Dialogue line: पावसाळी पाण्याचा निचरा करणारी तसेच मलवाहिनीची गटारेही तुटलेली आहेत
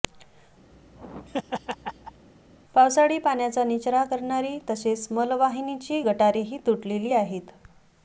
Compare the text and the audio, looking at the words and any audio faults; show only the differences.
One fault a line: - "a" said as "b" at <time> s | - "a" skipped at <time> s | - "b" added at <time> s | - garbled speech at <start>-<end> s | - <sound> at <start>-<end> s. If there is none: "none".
- laugh at 0.7-2.3 s